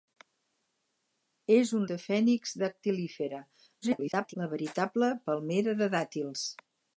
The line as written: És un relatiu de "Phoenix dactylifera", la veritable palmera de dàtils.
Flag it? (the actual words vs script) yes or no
yes